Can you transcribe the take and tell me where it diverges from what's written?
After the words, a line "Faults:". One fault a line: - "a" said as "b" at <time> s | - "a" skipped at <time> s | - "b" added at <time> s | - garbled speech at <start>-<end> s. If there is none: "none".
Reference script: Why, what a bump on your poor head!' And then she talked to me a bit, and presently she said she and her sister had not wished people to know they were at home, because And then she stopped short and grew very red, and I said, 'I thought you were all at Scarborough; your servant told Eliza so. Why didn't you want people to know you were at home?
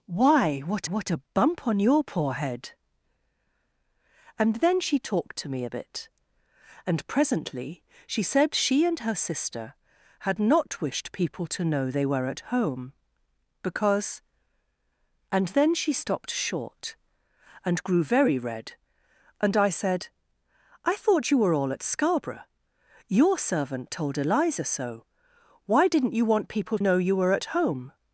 Why, what what a bump on your poor head!' And then she talked to me a bit, and presently she said she and her sister had not wished people to know they were at home, because And then she stopped short and grew very red, and I said, 'I thought you were all at Scarborough; your servant told Eliza so. Why didn't you want people know you were at home?
Faults:
- "what" added at 0.8 s
- "to" skipped at 26.8 s